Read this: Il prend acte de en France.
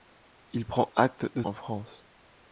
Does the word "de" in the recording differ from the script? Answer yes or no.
no